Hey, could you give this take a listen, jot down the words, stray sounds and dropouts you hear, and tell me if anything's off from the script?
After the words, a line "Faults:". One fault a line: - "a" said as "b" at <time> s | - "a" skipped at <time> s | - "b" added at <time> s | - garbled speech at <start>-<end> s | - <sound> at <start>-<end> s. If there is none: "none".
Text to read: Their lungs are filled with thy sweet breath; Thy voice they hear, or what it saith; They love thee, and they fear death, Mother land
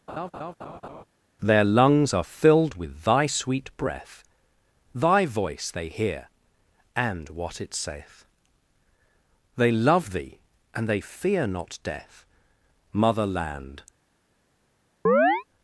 Their lungs are filled with thy sweet breath; Thy voice they hear, and what it saith; They love thee, and they fear not death, Mother land
Faults:
- laugh at 0.1-1.0 s
- "or" said as "and" at 6.9 s
- "not" added at 11.5 s
- chirp at 15.1-15.4 s